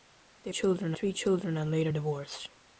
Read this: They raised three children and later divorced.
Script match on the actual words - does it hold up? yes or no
no